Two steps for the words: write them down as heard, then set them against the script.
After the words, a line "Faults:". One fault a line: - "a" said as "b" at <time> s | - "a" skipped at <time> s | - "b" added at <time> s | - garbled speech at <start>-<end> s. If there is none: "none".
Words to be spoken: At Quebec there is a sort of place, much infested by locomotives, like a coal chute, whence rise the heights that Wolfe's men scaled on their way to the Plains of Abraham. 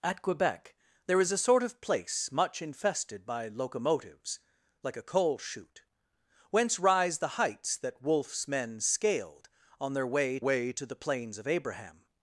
At Quebec there is a sort of place, much infested by locomotives, like a coal chute, whence rise the heights that Wolfe's men scaled on their way way to the Plains of Abraham.
Faults:
- "way" added at 10.4 s